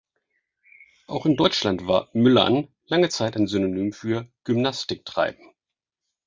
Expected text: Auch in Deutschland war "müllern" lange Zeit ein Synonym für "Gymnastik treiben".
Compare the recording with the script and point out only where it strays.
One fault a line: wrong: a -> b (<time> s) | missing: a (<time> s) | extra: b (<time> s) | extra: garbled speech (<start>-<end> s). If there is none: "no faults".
no faults